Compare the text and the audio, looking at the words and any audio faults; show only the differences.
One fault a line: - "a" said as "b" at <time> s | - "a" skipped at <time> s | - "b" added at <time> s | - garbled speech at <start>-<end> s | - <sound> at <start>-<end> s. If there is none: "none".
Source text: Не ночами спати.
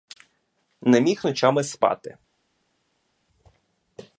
- "міг" added at 1.0 s